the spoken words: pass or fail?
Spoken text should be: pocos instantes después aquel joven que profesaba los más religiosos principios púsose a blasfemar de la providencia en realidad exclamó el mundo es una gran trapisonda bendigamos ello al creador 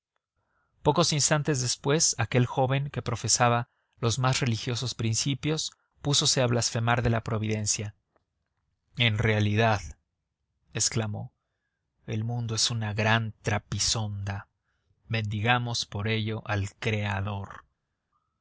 fail